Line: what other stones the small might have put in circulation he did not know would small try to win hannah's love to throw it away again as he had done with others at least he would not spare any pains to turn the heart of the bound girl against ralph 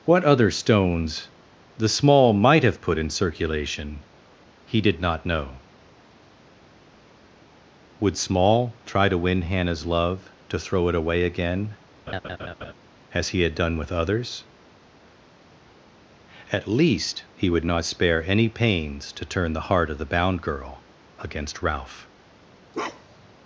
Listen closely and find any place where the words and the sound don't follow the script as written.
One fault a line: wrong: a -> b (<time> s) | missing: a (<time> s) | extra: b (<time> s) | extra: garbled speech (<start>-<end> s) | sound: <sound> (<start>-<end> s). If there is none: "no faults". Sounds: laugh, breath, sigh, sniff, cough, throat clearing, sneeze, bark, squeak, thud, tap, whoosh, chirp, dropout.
sound: laugh (12.1-12.7 s)
sound: bark (22.7-23.3 s)